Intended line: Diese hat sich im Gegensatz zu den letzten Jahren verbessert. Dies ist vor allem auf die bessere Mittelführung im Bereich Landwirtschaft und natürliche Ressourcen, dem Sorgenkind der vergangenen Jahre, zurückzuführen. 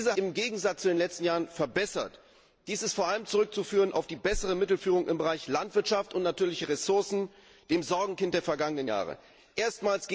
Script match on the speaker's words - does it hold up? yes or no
no